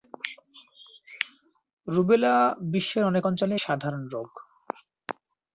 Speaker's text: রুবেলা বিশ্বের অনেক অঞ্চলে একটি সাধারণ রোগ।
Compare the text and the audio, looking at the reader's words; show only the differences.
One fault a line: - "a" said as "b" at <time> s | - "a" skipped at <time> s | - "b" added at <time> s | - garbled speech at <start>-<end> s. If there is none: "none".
- "একটি" skipped at 3.5 s